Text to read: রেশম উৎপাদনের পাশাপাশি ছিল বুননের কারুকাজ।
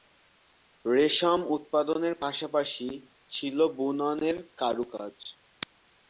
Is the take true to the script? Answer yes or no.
yes